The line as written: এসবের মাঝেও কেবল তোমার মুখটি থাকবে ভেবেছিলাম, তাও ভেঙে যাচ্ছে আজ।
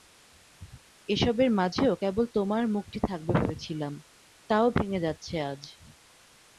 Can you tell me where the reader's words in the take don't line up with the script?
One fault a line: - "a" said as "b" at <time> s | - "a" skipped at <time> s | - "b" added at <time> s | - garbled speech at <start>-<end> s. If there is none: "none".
none